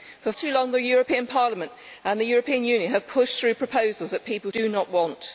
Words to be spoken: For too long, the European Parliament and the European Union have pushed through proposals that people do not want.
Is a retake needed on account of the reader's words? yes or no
no